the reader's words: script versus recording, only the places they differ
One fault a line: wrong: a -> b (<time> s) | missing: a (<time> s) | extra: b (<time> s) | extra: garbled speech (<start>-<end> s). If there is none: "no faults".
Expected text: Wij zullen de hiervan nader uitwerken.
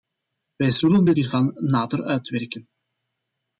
no faults